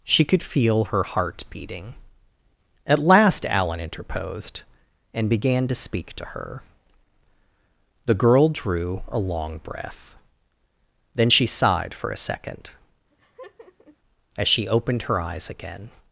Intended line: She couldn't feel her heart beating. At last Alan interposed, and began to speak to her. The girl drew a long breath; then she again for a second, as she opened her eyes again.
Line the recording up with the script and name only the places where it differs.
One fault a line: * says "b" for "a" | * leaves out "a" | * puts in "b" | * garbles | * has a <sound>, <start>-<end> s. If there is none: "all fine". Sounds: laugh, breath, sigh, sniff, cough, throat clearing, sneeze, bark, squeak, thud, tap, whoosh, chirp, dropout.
* says "could" for "couldn't"
* says "sighed" for "again"
* has a laugh, 13.1-14.0 s